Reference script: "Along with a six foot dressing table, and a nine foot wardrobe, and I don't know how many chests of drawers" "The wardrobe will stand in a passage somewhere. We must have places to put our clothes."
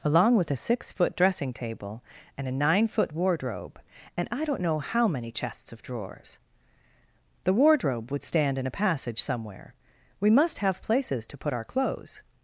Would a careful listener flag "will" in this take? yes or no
yes